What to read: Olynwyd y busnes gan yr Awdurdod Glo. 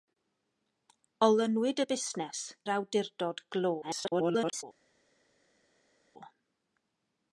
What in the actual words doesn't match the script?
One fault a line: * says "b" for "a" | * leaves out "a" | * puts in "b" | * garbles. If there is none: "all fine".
* leaves out "gan"
* garbles